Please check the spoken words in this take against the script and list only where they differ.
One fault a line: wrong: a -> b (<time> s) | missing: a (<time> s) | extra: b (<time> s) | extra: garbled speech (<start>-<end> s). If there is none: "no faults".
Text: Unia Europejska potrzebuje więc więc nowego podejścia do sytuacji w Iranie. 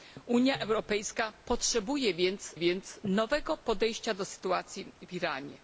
no faults